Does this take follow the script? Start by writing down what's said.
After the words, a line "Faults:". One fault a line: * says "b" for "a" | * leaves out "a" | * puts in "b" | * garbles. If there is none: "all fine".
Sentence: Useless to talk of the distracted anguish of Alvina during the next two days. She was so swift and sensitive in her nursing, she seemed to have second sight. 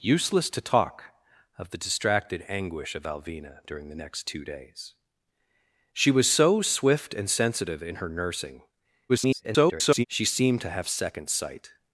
Useless to talk of the distracted anguish of Alvina during the next two days. She was so swift and sensitive in her nursing, [garbled] she seemed to have second sight.
Faults:
* garbles